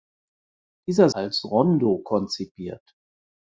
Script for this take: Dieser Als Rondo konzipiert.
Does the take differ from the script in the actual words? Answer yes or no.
no